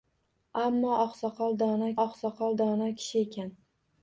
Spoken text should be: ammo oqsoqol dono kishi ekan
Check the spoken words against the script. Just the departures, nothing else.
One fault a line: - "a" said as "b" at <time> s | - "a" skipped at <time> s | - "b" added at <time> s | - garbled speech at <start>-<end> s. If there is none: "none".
- "oqsoqol dono" added at 2.0 s